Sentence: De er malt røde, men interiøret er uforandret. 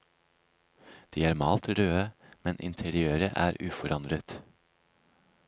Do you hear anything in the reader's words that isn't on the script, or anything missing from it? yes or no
no